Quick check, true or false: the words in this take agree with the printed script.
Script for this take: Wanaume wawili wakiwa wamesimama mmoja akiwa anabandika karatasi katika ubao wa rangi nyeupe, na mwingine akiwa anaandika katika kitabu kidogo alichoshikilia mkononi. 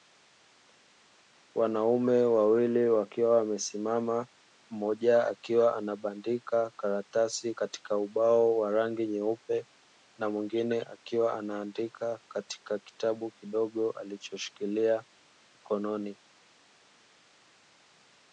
true